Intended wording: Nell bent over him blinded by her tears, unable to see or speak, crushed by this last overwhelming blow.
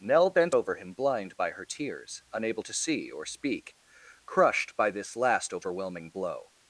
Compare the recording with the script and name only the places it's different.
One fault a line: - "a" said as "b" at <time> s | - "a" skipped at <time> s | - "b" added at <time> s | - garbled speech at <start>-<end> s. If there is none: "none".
- "blinded" said as "blind" at 0.9 s